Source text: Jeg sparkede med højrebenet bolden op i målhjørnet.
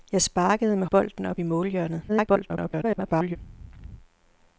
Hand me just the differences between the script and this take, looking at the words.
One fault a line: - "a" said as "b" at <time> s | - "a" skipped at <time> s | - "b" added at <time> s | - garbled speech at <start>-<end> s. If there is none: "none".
- "højrebenet" skipped at 0.9 s
- garbled speech at 2.1-3.4 s